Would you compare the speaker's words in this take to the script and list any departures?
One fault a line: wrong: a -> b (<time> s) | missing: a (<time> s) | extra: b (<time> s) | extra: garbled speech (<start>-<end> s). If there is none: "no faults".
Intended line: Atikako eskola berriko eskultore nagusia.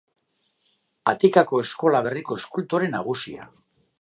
no faults